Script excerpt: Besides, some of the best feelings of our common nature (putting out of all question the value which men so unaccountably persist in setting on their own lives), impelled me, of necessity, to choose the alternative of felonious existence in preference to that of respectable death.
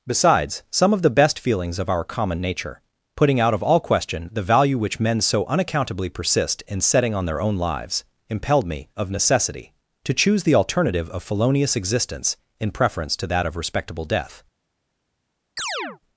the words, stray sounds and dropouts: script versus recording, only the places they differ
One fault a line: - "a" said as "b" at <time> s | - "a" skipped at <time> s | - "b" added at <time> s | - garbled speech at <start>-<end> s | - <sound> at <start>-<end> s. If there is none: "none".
- chirp at 15.6-16.0 s